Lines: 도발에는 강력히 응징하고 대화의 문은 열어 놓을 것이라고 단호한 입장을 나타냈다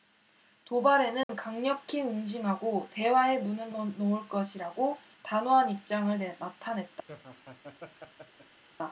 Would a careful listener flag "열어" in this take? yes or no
yes